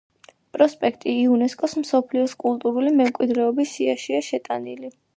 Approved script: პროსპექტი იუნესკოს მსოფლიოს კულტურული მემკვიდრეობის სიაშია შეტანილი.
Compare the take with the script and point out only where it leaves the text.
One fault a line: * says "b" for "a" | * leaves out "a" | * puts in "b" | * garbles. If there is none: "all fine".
all fine